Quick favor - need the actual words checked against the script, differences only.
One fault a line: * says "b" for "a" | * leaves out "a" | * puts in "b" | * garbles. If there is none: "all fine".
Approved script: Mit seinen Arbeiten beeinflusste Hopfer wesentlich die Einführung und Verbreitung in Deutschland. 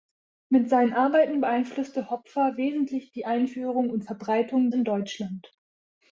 all fine